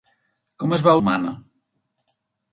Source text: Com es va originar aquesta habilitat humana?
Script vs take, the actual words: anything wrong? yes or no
yes